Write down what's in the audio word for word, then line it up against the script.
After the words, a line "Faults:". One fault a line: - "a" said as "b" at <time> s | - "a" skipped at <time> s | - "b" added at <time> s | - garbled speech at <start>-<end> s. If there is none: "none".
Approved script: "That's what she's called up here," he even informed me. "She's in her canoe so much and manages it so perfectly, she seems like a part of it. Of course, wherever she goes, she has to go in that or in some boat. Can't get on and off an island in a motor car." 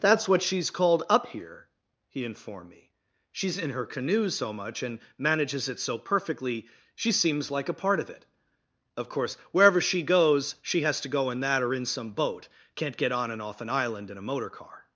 "That's what she's called up here," he informed me. "She's in her canoe so much and manages it so perfectly, she seems like a part of it. Of course, wherever she goes, she has to go in that or in some boat. Can't get on and off an island in a motor car."
Faults:
- "even" skipped at 2.2 s